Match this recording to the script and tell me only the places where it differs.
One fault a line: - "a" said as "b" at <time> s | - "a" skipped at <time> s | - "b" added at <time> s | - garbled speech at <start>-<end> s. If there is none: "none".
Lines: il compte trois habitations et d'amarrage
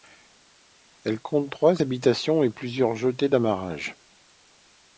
- "il" said as "elle" at 1.0 s
- "plusieurs jetées" added at 2.5 s